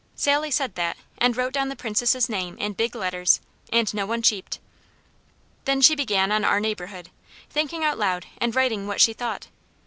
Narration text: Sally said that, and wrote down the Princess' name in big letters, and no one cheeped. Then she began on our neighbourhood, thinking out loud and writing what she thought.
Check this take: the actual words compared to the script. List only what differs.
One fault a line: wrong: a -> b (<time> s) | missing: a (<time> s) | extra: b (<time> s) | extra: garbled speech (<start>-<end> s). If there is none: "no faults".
no faults